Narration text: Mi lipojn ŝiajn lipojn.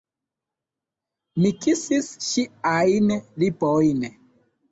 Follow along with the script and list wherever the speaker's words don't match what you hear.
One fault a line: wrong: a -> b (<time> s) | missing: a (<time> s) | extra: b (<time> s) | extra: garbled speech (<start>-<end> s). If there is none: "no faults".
wrong: lipojn -> kisis (1.6 s)